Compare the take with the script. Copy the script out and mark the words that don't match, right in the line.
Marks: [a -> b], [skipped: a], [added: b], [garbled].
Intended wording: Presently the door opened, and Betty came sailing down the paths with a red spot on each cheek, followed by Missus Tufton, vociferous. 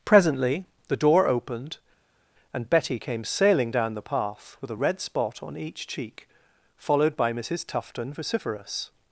Presently the door opened, and Betty came sailing down the [paths -> path] with a red spot on each cheek, followed by Missus Tufton, vociferous.